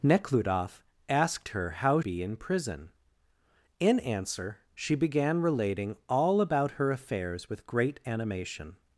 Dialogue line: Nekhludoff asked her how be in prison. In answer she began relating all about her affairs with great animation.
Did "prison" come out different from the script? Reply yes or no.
no